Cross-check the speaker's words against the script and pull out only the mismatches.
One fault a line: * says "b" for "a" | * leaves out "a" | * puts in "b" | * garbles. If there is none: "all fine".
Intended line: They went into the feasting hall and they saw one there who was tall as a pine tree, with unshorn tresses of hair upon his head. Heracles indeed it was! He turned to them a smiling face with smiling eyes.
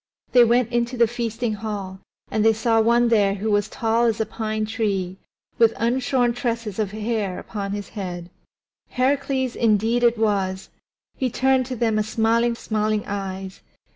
* leaves out "face with"